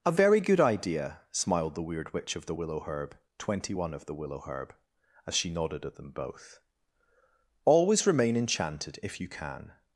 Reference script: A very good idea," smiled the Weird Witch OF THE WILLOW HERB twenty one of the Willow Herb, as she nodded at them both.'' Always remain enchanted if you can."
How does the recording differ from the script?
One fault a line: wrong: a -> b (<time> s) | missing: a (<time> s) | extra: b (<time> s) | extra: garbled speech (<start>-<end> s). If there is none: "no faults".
no faults